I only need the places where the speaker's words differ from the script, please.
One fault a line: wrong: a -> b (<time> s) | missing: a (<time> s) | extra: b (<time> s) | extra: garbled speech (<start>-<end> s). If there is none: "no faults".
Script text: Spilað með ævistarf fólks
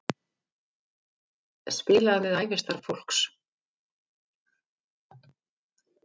no faults